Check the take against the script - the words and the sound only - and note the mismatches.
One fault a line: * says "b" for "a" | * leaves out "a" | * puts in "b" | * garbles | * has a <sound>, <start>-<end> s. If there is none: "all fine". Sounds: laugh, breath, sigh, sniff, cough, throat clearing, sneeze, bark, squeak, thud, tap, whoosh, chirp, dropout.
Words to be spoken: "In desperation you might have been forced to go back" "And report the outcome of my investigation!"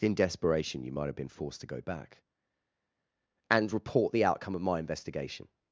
all fine